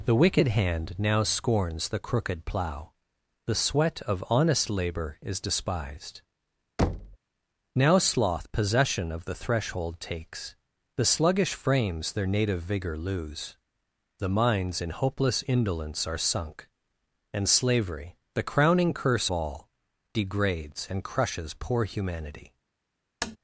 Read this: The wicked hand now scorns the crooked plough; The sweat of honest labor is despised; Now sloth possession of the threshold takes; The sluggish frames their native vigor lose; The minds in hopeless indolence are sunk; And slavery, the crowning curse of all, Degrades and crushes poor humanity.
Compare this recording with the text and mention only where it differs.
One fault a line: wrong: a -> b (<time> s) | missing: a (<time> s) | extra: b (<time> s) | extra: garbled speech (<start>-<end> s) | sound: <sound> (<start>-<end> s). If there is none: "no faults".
sound: thud (6.8-7.2 s)
missing: of (19.3 s)
sound: tap (23.2-23.4 s)